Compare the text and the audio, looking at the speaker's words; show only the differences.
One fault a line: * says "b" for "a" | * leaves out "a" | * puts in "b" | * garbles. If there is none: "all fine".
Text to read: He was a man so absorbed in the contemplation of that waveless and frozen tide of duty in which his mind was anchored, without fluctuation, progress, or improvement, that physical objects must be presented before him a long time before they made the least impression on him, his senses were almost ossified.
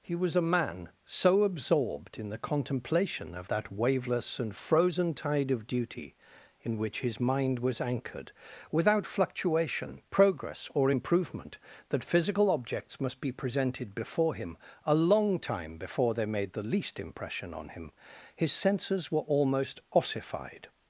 all fine